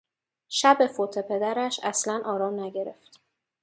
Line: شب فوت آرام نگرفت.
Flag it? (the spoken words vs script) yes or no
yes